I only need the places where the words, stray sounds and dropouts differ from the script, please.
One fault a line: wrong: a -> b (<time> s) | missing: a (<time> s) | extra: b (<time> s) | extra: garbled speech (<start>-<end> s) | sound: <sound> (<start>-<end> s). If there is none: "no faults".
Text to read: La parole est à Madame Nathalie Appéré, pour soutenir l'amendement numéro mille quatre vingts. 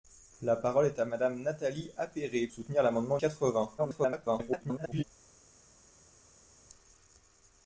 missing: pour (2.5 s)
missing: numéro mille (3.2 s)
extra: garbled speech (3.8-5.0 s)